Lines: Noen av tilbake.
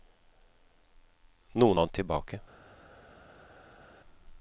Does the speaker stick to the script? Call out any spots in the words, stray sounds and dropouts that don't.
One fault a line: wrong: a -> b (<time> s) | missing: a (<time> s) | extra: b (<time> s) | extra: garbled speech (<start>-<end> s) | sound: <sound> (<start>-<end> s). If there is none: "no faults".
no faults